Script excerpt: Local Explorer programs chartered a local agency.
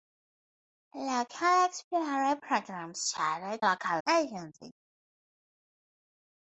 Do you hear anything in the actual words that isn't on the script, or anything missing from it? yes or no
no